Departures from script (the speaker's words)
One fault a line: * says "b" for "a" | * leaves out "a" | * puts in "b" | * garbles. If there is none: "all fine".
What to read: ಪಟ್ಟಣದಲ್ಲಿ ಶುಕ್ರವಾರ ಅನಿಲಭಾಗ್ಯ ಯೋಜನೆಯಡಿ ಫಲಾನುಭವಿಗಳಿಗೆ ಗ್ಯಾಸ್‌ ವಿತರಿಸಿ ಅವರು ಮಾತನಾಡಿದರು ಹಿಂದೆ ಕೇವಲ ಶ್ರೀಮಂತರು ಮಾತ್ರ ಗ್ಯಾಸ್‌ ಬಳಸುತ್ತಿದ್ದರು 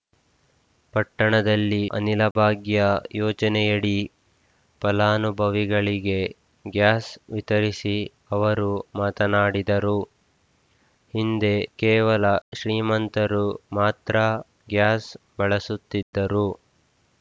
* leaves out "ಶುಕ್ರವಾರ"